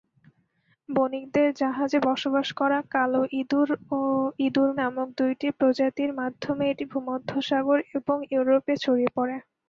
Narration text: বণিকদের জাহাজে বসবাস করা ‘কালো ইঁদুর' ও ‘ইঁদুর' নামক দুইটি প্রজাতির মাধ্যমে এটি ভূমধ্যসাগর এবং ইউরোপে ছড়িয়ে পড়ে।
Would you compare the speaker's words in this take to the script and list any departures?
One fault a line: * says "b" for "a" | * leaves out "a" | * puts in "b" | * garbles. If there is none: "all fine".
all fine